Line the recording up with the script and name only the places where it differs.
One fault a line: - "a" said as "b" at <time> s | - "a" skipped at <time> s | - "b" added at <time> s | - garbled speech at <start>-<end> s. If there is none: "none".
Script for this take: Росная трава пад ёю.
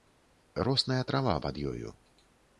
none